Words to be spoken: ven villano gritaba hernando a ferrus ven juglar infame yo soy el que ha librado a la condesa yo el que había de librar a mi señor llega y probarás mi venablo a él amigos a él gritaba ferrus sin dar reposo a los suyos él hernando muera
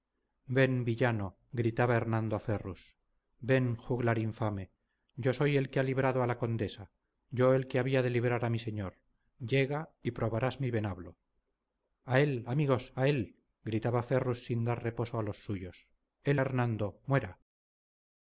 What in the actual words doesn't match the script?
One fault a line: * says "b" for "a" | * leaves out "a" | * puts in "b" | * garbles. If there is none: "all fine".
all fine